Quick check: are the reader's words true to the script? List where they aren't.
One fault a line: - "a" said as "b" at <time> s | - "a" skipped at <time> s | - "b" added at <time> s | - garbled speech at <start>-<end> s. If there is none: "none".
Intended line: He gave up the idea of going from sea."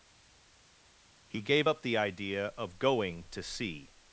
- "from" said as "to" at 3.3 s